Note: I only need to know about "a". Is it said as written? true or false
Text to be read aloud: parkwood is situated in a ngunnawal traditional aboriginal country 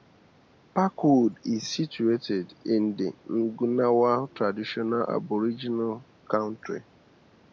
false